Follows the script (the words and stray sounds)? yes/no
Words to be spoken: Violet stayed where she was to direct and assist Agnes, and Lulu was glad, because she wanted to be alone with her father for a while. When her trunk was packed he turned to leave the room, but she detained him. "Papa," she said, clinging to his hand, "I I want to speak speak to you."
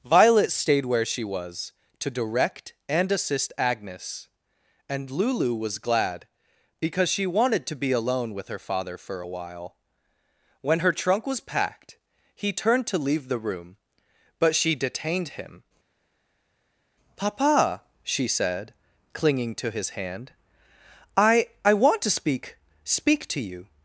yes